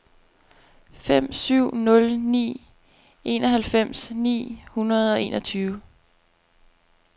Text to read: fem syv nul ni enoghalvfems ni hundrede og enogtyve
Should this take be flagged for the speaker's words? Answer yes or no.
no